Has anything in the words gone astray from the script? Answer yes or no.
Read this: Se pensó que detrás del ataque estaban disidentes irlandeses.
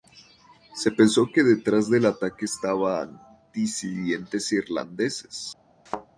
no